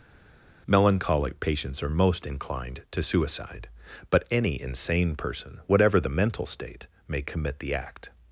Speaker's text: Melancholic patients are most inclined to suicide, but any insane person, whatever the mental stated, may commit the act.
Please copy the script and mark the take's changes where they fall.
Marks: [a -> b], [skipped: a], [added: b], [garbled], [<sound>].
Melancholic patients are most inclined to suicide, but any insane person, whatever the mental [stated, -> state] may commit the act.